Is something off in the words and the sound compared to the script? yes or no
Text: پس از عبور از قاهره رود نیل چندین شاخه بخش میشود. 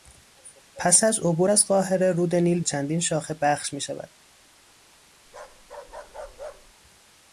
yes